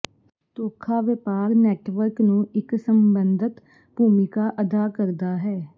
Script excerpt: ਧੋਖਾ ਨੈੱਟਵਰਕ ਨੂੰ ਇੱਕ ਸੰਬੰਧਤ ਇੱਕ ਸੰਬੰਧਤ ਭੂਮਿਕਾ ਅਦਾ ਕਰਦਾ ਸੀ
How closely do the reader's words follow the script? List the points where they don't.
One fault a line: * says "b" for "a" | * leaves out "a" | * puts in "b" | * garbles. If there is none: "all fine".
* puts in "ਵਪਾਰ"
* leaves out "ਇੱਕ ਸੰਬੰਧਤ"
* says "ਹੈ" for "ਸੀ"